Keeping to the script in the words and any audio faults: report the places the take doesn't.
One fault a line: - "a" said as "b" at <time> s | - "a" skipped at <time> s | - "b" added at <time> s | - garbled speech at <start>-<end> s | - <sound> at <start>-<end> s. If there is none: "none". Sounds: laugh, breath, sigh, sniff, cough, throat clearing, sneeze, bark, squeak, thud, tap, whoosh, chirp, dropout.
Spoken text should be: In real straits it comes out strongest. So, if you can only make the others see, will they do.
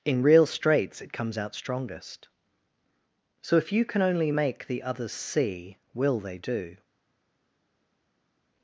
none